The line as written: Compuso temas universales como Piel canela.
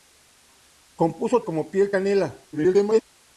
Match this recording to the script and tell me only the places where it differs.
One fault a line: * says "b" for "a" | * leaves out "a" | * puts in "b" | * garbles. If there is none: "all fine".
* leaves out "temas universales"
* garbles